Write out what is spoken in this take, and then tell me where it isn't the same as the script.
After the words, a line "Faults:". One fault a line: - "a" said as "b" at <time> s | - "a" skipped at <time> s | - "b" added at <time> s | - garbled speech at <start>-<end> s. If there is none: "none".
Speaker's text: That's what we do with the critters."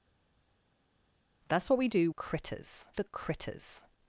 That's what we do critters the critters."
Faults:
- "with" said as "critters" at 2.1 s